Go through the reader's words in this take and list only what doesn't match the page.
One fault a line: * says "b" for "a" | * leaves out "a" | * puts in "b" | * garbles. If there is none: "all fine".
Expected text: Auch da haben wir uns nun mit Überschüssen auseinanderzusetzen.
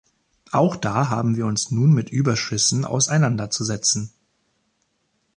all fine